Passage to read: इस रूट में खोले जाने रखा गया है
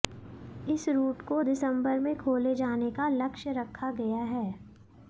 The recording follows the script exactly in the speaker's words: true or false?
false